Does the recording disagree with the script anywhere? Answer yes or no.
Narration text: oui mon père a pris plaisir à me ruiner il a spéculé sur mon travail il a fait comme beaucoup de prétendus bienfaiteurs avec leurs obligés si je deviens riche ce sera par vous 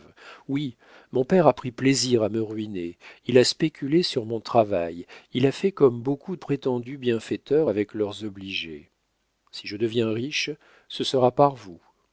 yes